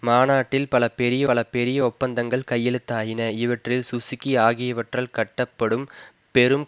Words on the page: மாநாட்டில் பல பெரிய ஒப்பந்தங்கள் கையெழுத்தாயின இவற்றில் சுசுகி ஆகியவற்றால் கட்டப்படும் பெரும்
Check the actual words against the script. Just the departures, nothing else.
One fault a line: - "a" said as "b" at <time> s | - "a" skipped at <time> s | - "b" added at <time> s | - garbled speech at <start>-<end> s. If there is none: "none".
- "பல பெரிய" added at 1.2 s